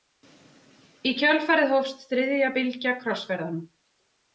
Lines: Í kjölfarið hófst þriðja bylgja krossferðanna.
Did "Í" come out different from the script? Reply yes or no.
no